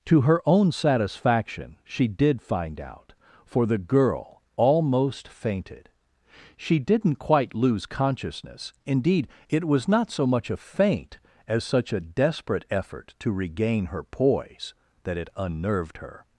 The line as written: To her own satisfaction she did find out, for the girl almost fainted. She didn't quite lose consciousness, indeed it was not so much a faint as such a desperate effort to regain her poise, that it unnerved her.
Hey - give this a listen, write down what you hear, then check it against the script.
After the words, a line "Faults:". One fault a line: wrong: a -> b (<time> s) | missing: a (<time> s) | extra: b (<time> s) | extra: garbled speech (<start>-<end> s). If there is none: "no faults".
To her own satisfaction she did find out, for the girl almost fainted. She didn't quite lose consciousness, indeed it was not so much a faint as such a desperate effort to regain her poise, that it unnerved her.
Faults:
no faults